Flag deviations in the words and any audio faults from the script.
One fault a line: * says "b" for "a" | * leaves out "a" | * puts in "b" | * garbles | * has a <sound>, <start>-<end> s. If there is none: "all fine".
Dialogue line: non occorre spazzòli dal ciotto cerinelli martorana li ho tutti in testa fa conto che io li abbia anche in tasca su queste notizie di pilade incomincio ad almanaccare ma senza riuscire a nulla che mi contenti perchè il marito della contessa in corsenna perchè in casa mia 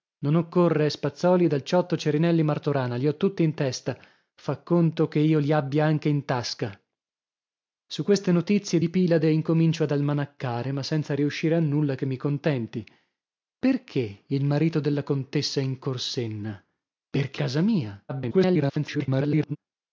* leaves out "in"
* garbles